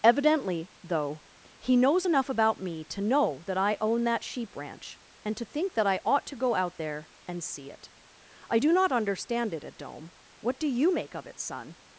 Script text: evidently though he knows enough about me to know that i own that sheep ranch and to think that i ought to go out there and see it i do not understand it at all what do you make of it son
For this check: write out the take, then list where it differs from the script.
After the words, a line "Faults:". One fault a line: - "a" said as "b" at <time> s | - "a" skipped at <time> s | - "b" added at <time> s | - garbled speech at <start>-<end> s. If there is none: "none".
evidently though he knows enough about me to know that i own that sheep ranch and to think that i ought to go out there and see it i do not understand it at dome what do you make of it son
Faults:
- "all" said as "dome" at 9.8 s